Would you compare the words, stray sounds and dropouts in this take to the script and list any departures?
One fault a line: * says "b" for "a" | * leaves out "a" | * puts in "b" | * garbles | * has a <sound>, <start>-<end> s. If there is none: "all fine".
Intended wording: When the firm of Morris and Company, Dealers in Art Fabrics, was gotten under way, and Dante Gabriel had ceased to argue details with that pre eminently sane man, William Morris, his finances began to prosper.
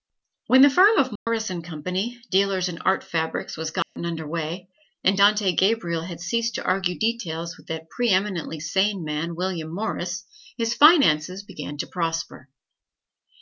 * has a dropout, 1.2-1.3 s
* has a dropout, 3.8-4.0 s